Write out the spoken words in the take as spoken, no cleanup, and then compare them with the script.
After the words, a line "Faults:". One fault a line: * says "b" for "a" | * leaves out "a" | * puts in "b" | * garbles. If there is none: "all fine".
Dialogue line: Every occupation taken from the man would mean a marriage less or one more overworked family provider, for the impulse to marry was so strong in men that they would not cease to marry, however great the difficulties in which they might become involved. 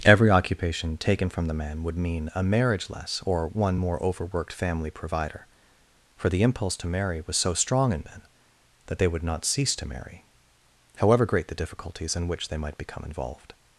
Every occupation taken from the man would mean a marriage less or one more overworked family provider, for the impulse to marry was so strong in men that they would not cease to marry, however great the difficulties in which they might become involved.
Faults:
all fine